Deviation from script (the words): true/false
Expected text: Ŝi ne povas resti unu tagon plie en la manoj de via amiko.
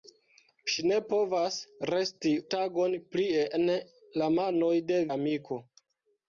true